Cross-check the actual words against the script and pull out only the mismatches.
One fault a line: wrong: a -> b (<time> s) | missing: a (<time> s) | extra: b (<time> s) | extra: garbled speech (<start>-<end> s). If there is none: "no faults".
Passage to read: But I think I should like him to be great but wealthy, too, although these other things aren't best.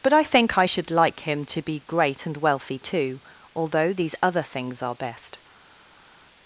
wrong: but -> and (2.3 s)
wrong: aren't -> are (4.8 s)